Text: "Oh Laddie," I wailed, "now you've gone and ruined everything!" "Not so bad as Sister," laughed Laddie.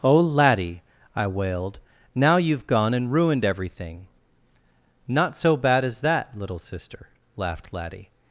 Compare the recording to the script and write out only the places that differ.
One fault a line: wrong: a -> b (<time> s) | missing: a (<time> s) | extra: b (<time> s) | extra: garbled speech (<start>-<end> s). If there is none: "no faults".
extra: that Little (6.0 s)